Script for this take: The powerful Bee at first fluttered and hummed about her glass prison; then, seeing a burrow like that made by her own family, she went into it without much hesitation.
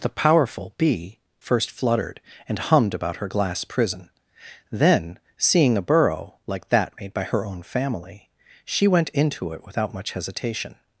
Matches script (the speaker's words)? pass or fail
fail